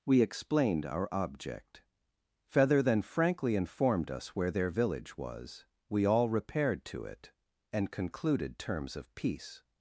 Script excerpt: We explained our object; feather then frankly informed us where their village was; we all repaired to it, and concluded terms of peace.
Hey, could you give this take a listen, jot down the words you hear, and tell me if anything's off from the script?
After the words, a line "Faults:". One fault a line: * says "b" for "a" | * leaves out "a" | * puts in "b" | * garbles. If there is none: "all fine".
We explained our object; feather then frankly informed us where their village was; we all repaired to it, and concluded terms of peace.
Faults:
all fine